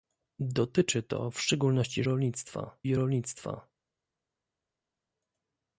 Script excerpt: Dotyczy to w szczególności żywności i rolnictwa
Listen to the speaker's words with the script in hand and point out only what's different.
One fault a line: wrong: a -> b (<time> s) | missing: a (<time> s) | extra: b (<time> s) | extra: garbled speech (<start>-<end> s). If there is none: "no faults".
wrong: żywności -> rolnictwa (2.0 s)